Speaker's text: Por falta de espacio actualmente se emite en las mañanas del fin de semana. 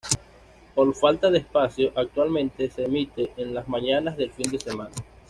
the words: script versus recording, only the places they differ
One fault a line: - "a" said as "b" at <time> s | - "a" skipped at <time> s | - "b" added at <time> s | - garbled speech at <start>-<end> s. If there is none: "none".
none